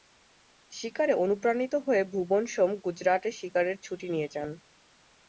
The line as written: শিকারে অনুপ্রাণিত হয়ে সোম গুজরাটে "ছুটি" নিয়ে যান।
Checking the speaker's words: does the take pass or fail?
fail